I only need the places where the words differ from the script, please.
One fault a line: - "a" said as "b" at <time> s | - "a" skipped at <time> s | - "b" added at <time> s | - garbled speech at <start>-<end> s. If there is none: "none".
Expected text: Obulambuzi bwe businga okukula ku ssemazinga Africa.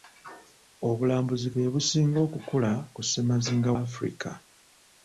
none